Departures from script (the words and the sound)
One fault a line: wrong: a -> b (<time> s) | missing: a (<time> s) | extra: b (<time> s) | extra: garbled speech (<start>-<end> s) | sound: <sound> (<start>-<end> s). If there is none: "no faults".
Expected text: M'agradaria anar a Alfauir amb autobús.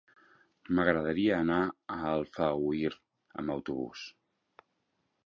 no faults